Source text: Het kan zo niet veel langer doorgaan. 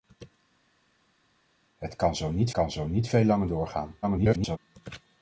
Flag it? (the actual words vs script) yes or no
yes